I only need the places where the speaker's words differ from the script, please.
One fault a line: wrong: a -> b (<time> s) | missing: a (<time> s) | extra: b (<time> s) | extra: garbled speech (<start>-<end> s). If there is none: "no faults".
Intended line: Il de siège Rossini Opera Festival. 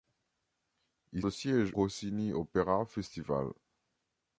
no faults